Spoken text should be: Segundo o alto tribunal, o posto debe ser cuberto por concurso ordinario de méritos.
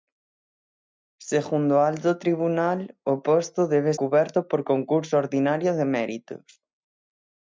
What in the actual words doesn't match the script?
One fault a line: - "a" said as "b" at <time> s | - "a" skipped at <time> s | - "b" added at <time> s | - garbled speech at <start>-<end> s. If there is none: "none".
- "ser" skipped at 3.9 s